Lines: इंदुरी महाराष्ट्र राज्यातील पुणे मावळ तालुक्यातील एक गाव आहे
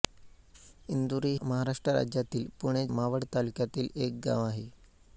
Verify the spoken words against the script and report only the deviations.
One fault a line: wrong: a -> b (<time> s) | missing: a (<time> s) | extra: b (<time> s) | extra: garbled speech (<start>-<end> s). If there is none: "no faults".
no faults